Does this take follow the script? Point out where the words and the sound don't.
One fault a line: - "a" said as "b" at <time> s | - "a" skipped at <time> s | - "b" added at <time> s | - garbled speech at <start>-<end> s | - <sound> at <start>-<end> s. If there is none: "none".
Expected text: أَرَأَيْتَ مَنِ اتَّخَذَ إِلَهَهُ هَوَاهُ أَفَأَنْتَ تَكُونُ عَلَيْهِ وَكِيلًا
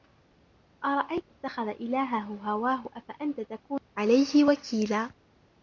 - "مَنِ" skipped at 1.3 s